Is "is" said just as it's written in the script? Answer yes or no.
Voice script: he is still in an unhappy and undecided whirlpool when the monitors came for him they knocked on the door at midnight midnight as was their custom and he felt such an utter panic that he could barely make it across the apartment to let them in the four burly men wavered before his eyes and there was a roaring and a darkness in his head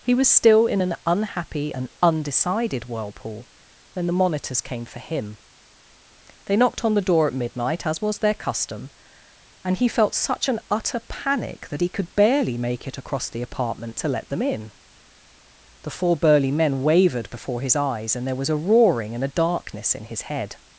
no